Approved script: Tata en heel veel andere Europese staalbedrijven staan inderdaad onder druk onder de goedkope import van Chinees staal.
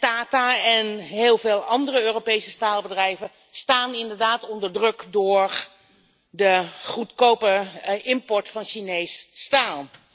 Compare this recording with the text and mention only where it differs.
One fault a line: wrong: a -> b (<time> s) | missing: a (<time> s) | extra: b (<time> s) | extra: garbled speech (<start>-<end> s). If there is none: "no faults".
wrong: onder -> door (5.1 s)